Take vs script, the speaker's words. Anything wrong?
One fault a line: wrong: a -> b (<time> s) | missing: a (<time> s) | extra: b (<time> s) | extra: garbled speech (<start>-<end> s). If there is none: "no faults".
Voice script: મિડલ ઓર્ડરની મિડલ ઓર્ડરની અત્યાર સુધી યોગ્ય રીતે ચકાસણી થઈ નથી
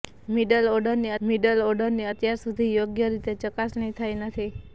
no faults